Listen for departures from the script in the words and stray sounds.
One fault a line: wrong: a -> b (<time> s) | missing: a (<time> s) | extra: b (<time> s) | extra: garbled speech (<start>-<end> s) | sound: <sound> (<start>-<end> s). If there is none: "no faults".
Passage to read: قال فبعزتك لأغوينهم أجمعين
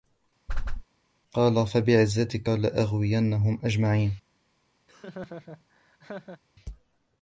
sound: whoosh (0.5-0.8 s)
sound: laugh (4.9-6.4 s)